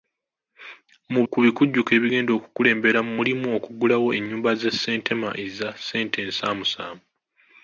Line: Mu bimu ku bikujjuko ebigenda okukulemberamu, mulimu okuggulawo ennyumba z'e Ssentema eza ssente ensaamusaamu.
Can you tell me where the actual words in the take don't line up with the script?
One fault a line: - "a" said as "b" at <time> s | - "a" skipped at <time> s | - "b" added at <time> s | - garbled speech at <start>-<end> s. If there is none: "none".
- "bimu" skipped at 1.2 s